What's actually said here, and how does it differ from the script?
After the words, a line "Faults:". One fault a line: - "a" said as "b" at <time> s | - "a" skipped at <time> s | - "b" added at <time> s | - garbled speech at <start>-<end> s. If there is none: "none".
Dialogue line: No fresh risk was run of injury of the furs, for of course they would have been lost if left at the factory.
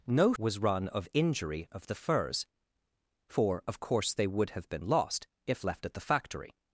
No was run of injury of the furs, for of course they would have been lost if left at the factory.
Faults:
- "fresh risk" skipped at 0.3 s